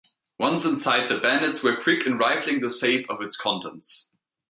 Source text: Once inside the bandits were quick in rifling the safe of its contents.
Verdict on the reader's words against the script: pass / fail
pass